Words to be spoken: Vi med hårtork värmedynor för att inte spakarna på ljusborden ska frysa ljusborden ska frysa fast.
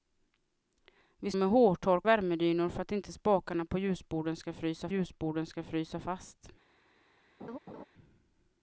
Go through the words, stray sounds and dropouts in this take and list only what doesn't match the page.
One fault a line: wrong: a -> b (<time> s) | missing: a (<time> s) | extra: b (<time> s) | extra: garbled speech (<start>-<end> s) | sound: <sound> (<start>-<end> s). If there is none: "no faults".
sound: laugh (7.4-7.8 s)